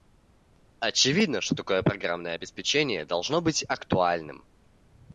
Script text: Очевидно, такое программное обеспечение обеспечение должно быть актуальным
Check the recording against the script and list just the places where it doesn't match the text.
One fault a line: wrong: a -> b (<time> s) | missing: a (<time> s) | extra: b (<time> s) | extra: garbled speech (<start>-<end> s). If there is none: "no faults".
extra: что (1.4 s)
missing: обеспечение (3.0 s)